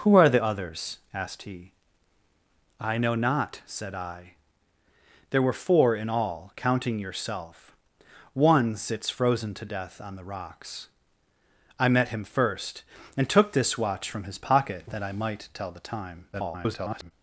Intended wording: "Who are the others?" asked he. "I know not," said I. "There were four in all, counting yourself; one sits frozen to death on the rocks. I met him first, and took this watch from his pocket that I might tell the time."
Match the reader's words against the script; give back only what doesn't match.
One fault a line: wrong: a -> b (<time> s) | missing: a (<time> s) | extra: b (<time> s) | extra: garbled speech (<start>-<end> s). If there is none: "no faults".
extra: garbled speech (16.3-17.1 s)